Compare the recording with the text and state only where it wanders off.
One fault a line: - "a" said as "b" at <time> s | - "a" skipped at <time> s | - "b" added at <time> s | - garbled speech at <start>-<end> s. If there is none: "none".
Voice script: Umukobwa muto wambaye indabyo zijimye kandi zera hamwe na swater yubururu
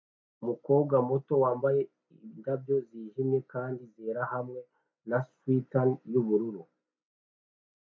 none